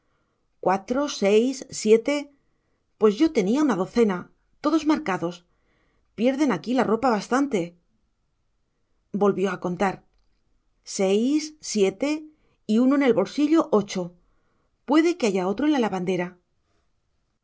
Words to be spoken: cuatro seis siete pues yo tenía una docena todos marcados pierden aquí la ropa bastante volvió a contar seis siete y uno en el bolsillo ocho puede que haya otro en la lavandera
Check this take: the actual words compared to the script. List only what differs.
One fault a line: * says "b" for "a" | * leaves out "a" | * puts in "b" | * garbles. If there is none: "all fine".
all fine